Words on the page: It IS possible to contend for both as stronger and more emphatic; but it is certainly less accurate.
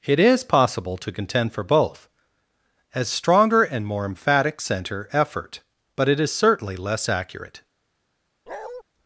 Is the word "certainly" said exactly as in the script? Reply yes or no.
yes